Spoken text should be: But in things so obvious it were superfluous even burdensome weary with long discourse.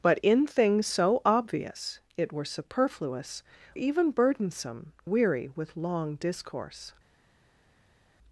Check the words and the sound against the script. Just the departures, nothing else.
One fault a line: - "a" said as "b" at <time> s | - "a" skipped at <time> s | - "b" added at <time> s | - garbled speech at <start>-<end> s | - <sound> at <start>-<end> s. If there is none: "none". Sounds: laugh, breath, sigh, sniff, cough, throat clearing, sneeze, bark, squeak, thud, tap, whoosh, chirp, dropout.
none